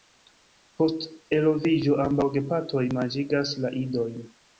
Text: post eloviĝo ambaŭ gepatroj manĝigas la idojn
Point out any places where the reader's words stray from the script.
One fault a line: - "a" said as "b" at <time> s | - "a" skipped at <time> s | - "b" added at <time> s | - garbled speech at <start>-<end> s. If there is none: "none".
none